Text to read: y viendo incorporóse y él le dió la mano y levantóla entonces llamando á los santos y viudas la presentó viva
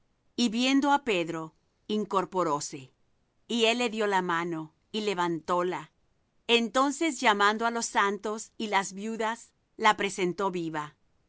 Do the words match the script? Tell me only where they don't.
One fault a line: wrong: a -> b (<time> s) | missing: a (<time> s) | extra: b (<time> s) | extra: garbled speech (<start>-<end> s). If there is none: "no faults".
extra: á pedro (0.9 s)
extra: las (8.7 s)